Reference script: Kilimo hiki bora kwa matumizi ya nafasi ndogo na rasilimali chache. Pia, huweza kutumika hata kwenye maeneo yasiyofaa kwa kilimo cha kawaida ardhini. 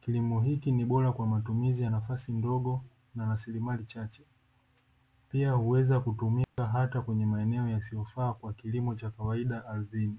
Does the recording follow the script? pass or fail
fail